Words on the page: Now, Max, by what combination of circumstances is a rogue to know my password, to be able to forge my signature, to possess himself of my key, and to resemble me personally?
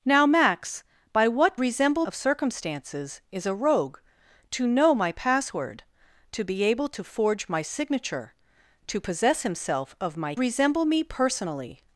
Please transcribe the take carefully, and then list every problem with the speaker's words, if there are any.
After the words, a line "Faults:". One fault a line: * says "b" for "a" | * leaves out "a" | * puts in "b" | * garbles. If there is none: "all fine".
Now, Max, by what resemble of circumstances is a rogue to know my password, to be able to forge my signature, to possess himself of my resemble me personally?
Faults:
* says "resemble" for "combination"
* leaves out "key and to"